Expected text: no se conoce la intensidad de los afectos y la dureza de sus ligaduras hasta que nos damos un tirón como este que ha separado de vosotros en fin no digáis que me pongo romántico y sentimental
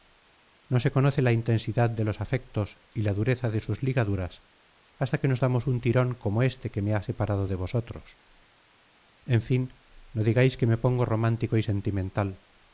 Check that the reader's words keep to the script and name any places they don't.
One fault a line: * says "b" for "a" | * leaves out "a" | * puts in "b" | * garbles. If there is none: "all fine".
* puts in "me"